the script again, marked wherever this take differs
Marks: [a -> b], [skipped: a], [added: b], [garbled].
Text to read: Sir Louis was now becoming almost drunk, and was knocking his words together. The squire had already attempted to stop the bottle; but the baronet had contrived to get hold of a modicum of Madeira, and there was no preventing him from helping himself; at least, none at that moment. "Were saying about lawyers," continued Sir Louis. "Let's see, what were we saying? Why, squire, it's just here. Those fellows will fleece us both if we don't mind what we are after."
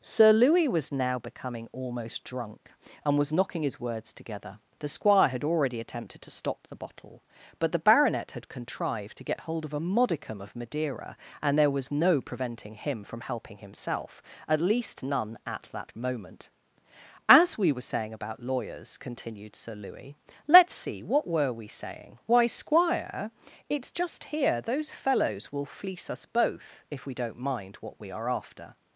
Sir Louis was now becoming almost drunk, and was knocking his words together. The squire had already attempted to stop the bottle; but the baronet had contrived to get hold of a modicum of Madeira, and there was no preventing him from helping himself; at least, none at that moment. [added: As we] "Were saying about lawyers," continued Sir Louis. "Let's see, what were we saying? Why, squire, it's just here. Those fellows will fleece us both if we don't mind what we are after."